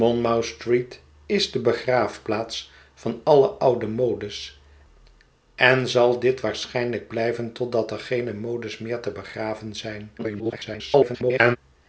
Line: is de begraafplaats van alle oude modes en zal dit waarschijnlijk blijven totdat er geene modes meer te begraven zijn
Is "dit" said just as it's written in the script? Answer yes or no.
yes